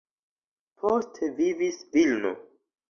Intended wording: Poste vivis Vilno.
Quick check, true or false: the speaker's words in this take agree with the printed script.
true